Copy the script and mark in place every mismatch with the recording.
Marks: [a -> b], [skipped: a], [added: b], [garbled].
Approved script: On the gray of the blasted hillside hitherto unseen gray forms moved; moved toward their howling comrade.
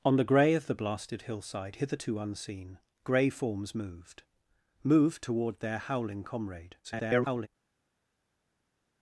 On the gray of the blasted hillside hitherto unseen gray forms moved; moved toward their howling comrade. [garbled]